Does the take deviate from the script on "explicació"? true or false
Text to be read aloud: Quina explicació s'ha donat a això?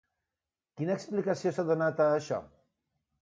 false